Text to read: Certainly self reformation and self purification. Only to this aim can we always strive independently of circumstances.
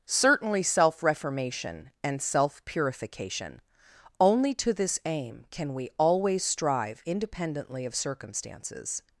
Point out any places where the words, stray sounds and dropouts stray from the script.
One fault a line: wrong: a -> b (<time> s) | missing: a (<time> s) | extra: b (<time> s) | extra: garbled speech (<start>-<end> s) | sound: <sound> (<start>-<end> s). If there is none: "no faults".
no faults